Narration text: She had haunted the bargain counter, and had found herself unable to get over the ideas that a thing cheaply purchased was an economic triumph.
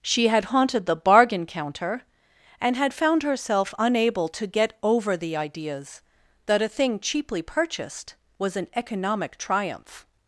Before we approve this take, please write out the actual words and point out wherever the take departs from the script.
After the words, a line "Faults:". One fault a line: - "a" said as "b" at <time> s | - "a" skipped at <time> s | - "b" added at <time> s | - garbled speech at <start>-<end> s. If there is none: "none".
She had haunted the bargain counter, and had found herself unable to get over the ideas that a thing cheaply purchased was an economic triumph.
Faults:
none